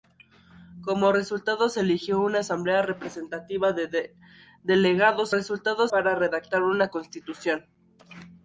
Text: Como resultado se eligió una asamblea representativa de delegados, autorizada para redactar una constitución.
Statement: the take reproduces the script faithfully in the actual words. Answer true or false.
false